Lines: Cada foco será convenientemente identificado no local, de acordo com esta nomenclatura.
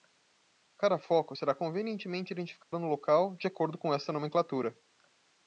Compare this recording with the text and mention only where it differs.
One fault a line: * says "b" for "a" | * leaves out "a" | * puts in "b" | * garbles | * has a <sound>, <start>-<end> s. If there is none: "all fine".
* has a dropout, 2.6-2.7 s